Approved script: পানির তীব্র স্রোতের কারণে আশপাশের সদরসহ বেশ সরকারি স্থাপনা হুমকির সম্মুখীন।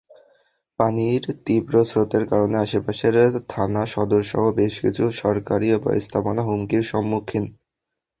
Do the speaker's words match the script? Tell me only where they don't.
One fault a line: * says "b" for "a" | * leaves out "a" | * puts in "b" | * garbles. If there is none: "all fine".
* puts in "থানা"
* puts in "কিছু"